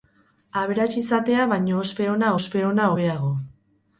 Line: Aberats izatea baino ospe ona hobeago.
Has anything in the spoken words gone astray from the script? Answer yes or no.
yes